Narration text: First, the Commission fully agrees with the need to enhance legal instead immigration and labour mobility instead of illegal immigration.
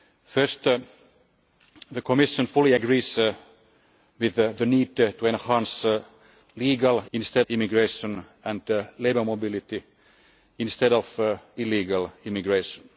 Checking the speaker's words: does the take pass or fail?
pass